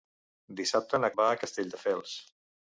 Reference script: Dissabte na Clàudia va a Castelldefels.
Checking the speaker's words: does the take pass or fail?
fail